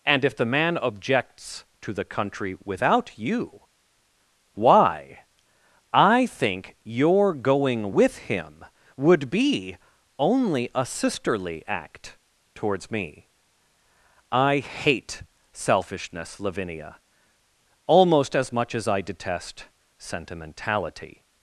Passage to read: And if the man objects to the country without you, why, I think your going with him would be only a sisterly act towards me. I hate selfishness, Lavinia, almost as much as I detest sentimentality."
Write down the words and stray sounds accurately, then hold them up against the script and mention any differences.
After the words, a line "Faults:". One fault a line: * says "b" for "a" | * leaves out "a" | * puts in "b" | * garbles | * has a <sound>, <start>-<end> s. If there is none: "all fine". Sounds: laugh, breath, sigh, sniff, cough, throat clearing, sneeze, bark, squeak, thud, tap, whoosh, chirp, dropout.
And if the man objects to the country without you, why, I think your going with him would be only a sisterly act towards me. I hate selfishness, Lavinia, almost as much as I detest sentimentality."
Faults:
all fine